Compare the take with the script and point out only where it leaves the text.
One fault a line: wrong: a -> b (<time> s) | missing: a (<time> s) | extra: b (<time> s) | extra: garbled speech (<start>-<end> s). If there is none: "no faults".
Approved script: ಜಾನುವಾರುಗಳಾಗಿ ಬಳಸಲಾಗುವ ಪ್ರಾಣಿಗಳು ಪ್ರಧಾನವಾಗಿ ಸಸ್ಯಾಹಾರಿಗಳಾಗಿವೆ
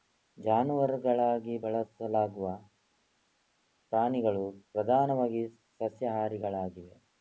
no faults